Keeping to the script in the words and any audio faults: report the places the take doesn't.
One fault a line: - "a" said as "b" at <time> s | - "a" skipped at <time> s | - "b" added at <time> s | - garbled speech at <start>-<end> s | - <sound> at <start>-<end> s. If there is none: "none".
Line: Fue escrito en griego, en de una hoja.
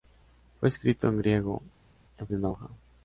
none